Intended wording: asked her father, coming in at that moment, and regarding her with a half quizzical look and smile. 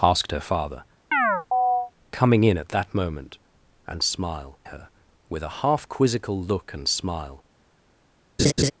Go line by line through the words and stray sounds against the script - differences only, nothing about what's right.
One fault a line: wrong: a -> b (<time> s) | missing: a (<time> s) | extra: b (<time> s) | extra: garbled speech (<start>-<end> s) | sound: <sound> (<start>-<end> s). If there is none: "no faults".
sound: chirp (1.1-1.9 s)
wrong: regarding -> smile (4.0 s)
sound: laugh (8.4-8.7 s)